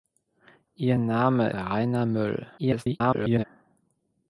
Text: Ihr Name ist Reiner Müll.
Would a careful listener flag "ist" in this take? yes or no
yes